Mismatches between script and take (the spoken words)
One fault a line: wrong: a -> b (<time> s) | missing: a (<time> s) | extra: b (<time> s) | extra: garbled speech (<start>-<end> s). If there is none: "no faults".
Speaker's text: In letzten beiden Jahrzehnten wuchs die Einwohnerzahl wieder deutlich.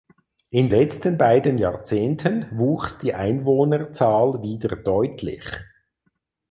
no faults